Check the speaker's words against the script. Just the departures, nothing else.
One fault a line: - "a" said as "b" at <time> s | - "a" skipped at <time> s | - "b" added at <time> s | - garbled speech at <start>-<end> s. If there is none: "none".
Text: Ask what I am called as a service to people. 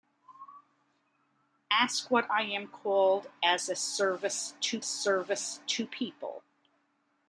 - "service to" added at 4.8 s